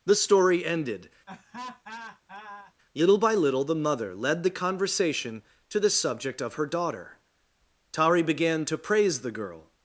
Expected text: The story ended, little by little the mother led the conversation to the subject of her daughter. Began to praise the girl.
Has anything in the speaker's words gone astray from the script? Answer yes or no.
yes